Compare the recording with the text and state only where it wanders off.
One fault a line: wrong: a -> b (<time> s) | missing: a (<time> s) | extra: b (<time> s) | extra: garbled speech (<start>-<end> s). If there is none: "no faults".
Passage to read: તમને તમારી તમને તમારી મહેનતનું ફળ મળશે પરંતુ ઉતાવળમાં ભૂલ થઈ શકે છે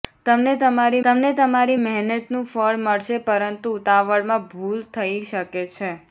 no faults